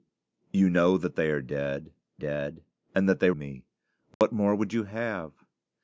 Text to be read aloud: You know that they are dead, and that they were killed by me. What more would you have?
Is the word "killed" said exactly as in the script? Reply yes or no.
no